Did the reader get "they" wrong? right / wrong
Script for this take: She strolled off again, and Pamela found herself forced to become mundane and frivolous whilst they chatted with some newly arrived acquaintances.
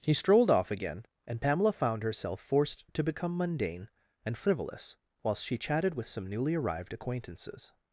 wrong